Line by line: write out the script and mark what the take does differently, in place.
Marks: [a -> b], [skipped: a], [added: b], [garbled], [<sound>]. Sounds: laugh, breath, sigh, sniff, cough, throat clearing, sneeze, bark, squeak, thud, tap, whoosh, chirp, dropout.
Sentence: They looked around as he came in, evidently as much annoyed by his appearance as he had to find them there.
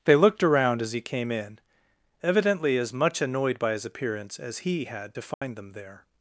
They looked around as he came in, evidently as much annoyed by his appearance as he had to find [dropout] them there.